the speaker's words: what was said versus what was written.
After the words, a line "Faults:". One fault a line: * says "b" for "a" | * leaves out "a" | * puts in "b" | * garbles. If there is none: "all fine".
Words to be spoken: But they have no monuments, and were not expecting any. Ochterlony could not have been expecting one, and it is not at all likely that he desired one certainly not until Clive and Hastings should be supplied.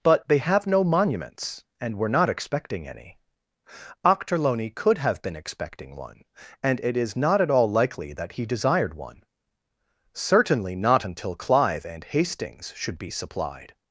But they have no monuments, and were not expecting any. Ochterlony could have been expecting one, and it is not at all likely that he desired one certainly not until Clive and Hastings should be supplied.
Faults:
* leaves out "not"